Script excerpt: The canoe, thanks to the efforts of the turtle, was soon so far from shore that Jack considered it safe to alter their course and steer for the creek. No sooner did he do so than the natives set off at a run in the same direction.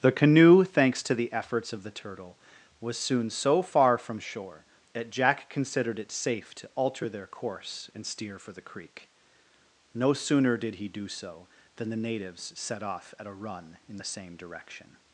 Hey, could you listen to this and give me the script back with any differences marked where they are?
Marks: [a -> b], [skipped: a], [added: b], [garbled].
The canoe, thanks to the efforts of the turtle, was soon so far from shore that Jack considered it safe to alter their course and steer for the creek. No sooner did he do so than the natives set off at a run in the same direction.